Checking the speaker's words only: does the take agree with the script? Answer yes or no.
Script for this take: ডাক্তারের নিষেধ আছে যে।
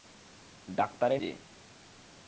no